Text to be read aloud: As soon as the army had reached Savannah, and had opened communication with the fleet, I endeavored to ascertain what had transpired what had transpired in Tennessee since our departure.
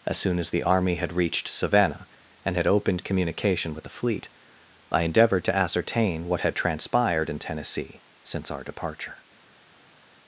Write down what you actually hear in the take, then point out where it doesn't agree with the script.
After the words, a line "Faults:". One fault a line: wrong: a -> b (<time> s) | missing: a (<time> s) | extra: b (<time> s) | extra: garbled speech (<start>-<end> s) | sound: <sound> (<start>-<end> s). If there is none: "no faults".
As soon as the army had reached Savannah, and had opened communication with the fleet, I endeavored to ascertain what had transpired in Tennessee since our departure.
Faults:
missing: what had transpired (7.3 s)